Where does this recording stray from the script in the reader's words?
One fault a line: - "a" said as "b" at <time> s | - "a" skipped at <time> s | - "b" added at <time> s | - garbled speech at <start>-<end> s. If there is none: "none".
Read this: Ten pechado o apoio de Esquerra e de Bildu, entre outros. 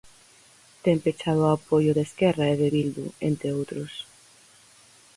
none